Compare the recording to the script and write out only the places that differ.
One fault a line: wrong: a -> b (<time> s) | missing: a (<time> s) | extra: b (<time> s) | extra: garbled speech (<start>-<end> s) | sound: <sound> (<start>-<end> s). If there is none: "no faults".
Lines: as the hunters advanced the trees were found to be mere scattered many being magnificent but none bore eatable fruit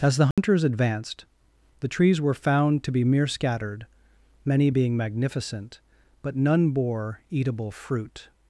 sound: dropout (0.3-0.4 s)